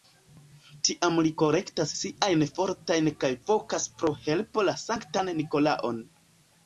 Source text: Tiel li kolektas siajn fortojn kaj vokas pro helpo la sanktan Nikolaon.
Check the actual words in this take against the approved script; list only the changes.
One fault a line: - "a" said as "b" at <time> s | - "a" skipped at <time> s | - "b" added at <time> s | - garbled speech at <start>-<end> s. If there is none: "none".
- "Tiel" said as "Tiam" at 0.9 s